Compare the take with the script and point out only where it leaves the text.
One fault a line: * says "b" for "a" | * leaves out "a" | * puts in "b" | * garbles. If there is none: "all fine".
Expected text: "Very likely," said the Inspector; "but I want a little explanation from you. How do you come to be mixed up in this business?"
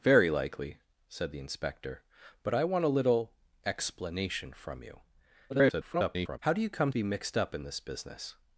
* garbles
* leaves out "to"